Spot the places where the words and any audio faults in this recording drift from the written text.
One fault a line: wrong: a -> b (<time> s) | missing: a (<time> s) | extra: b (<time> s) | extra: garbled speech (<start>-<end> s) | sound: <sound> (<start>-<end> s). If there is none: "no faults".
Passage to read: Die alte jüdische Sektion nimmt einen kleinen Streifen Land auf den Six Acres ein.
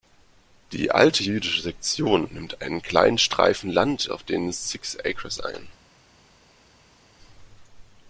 no faults